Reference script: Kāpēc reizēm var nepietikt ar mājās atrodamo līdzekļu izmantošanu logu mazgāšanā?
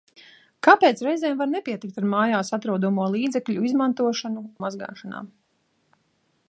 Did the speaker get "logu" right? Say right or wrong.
wrong